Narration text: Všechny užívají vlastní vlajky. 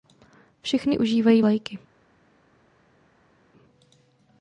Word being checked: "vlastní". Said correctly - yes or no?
no